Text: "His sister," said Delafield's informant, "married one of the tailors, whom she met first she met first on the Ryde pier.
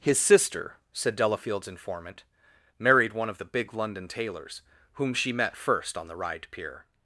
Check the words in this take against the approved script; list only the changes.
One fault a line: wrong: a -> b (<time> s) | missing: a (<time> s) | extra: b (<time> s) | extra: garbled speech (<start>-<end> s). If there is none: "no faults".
extra: big London (3.5 s)
missing: she met first (6.0 s)